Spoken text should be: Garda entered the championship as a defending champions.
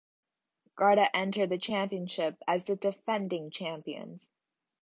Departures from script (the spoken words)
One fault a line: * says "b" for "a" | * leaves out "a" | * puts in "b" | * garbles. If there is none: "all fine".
* says "the" for "a"